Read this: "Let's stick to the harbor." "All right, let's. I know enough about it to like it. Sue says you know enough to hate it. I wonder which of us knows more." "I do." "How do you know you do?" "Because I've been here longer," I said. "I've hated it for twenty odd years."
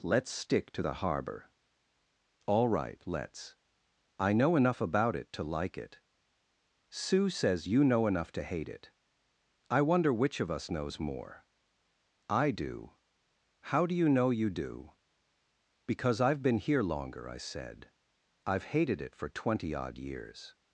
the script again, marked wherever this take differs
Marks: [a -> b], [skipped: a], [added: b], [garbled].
"Let's stick to the harbor." "All right, let's. I know enough about it to like it. Sue says you know enough to hate it. I wonder which of us knows more." "I do." "How do you know you do?" "Because I've been here longer," I said. "I've hated it for twenty odd years."